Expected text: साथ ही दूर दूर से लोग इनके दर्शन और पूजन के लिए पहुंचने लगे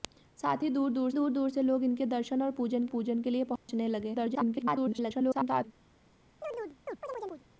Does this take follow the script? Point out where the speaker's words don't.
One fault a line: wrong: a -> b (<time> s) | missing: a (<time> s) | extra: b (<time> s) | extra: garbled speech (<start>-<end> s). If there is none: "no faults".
extra: दूर दूर (1.1 s)
extra: पूजन (2.9 s)
extra: garbled speech (4.1-5.6 s)